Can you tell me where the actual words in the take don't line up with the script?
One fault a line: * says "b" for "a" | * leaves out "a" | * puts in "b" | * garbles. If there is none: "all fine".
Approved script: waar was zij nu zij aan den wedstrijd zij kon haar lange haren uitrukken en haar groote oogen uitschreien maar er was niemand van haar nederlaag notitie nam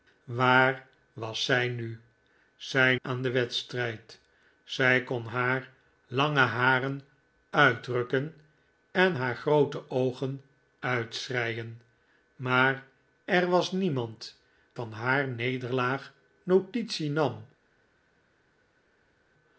all fine